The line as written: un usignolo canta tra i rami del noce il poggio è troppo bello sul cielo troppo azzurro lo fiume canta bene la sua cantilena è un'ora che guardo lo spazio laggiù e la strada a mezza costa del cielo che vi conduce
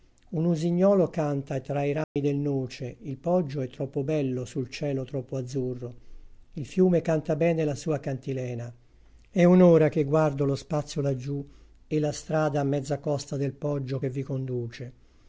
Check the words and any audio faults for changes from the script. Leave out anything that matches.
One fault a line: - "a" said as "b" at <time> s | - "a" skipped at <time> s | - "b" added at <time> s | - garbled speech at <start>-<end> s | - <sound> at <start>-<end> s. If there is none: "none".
- dropout at 2.0-2.2 s
- "lo" said as "il" at 6.5 s
- "cielo" said as "poggio" at 13.5 s